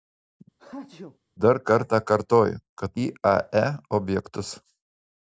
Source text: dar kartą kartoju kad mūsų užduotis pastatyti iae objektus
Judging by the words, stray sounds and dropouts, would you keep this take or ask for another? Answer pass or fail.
fail